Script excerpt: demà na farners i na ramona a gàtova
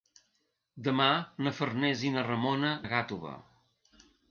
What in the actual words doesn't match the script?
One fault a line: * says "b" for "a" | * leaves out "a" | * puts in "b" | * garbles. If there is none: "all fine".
all fine